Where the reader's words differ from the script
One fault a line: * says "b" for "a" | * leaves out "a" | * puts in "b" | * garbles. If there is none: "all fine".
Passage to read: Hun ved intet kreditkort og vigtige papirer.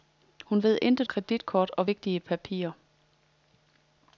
all fine